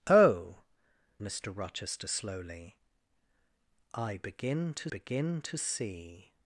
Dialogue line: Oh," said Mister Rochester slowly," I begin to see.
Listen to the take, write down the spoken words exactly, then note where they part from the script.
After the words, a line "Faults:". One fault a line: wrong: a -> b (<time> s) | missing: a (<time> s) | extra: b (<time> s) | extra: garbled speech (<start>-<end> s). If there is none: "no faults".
Oh," Mister Rochester slowly," I begin to begin to see.
Faults:
missing: said (0.6 s)
extra: begin to (4.9 s)